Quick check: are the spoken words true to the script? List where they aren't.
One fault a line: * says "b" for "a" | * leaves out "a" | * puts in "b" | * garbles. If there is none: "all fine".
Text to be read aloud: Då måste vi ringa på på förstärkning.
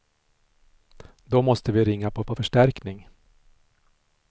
all fine